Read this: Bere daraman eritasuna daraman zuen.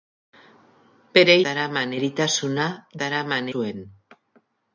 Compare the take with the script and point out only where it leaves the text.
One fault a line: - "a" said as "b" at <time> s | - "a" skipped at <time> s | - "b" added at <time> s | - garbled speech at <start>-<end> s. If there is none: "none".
none